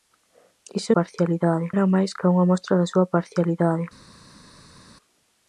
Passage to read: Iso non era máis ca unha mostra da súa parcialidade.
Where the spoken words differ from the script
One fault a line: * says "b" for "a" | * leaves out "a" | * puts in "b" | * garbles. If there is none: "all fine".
* says "parcialidade" for "non"